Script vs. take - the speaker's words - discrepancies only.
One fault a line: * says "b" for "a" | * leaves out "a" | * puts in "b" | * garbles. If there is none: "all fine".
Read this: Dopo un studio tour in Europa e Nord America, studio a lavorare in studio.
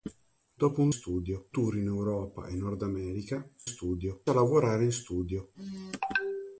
all fine